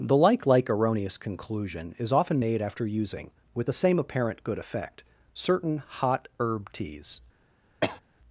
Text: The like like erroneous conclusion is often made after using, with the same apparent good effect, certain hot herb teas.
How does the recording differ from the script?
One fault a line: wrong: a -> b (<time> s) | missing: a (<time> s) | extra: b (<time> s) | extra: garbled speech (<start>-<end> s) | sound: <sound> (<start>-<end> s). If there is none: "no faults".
sound: cough (7.8-8.0 s)